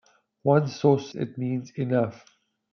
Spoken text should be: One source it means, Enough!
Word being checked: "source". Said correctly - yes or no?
yes